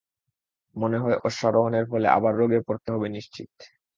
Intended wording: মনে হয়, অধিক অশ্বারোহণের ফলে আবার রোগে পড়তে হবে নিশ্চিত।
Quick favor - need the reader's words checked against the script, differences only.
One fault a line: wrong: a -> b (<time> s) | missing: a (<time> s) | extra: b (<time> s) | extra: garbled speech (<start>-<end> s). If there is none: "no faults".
missing: অধিক (1.2 s)